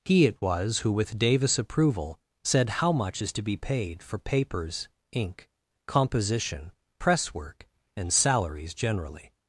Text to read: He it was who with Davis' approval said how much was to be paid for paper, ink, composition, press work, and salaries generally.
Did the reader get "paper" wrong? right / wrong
wrong